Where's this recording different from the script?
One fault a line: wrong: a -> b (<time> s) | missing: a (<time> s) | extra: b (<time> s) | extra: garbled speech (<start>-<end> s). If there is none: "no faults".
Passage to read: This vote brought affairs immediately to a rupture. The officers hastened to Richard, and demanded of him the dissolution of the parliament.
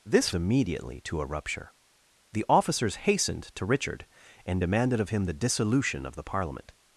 missing: vote brought affairs (0.3 s)